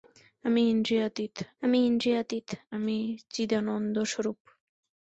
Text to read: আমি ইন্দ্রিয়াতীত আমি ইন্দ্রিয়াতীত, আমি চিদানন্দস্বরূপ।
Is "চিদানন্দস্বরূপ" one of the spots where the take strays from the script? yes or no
no